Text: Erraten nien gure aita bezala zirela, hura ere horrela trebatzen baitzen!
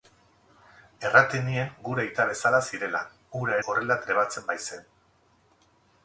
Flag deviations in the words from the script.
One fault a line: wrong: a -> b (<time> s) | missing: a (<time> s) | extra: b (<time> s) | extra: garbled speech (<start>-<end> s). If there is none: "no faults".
missing: ere (3.6 s)